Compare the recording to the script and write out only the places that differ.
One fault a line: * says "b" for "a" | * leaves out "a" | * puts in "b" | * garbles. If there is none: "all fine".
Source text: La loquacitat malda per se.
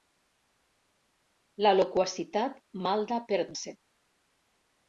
all fine